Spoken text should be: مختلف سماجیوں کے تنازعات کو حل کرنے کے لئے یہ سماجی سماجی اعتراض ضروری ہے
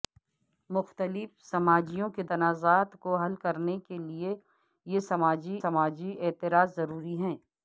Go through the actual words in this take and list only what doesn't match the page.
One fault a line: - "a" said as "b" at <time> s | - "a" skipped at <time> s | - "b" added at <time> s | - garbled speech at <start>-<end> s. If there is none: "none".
none